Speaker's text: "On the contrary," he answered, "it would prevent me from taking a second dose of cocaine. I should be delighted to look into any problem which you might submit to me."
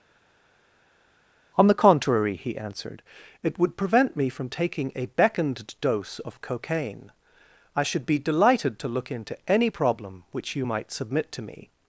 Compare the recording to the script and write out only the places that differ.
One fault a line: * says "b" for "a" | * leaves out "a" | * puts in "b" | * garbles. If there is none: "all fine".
* says "beckoned" for "second"